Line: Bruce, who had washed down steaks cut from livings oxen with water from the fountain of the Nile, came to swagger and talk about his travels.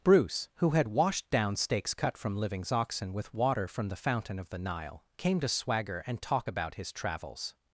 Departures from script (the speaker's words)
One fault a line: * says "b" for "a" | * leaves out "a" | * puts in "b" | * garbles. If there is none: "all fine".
all fine